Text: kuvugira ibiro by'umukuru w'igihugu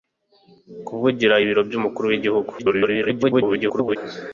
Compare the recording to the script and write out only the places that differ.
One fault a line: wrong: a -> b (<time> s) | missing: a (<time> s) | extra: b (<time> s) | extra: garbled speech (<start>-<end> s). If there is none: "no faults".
extra: garbled speech (2.6-4.0 s)